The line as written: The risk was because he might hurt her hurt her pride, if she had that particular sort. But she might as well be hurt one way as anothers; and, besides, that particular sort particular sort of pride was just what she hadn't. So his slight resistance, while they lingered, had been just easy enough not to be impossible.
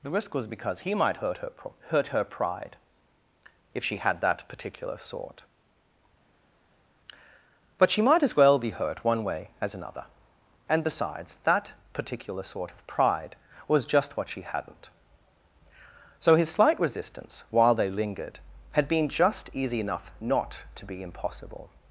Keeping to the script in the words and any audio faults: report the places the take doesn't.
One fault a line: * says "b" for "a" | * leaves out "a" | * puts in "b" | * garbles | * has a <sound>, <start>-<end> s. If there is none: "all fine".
* says "another" for "anothers"
* leaves out "particular sort"